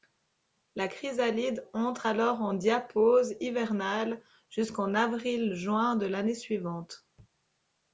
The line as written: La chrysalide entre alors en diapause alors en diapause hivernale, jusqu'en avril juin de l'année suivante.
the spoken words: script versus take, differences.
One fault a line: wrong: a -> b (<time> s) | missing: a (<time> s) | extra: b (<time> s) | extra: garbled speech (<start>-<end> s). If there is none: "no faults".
missing: alors en diapause (3.3 s)